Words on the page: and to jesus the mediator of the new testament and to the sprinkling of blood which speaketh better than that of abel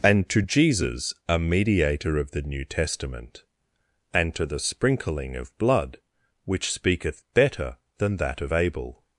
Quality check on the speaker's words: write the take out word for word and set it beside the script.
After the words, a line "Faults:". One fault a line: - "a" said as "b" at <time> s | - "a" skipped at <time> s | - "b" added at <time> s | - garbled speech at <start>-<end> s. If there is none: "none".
and to jesus a mediator of the new testament and to the sprinkling of blood which speaketh better than that of abel
Faults:
- "the" said as "a" at 1.3 s